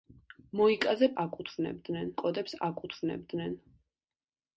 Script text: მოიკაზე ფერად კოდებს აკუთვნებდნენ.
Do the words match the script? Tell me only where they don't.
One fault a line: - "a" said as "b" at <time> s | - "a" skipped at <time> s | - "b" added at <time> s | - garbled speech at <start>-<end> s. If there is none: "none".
- "ფერად" said as "აკუთვნებდნენ" at 1.2 s